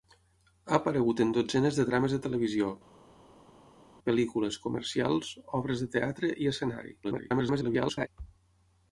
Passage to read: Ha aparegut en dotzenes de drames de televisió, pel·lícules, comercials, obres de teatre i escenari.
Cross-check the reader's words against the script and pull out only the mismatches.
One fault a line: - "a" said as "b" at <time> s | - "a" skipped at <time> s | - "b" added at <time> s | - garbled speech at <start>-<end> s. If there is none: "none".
- garbled speech at 7.0-8.1 s